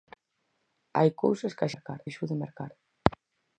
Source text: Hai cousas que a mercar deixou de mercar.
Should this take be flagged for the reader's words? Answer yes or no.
no